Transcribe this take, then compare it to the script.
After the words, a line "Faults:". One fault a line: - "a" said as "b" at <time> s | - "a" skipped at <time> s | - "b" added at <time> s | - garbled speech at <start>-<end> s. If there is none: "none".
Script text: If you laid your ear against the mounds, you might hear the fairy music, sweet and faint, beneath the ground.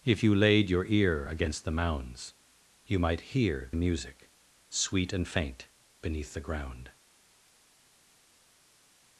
If you laid your ear against the mounds, you might hear music, sweet and faint, beneath the ground.
Faults:
- "the fairy" skipped at 3.7 s